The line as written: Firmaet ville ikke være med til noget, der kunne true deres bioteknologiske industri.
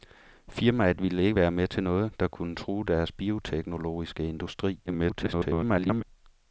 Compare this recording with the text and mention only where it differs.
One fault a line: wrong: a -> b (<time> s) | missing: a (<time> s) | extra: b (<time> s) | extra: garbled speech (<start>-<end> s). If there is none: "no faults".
extra: garbled speech (4.9-6.0 s)